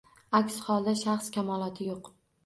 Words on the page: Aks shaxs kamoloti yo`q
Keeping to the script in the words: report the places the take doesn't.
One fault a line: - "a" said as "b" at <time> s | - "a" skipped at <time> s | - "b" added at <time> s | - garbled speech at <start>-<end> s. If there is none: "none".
- "holda" added at 0.7 s